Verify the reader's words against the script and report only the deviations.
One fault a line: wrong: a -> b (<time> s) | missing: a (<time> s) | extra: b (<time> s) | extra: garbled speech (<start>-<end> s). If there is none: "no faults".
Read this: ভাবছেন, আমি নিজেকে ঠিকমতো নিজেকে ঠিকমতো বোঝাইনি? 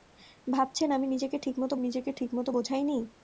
no faults